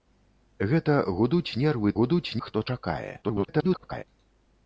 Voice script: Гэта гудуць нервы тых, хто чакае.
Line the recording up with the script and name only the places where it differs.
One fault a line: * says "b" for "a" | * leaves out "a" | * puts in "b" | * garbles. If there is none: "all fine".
* says "гудуць" for "тых"
* garbles